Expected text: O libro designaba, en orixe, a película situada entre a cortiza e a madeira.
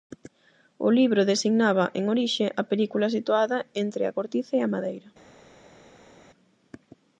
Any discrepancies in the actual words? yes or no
no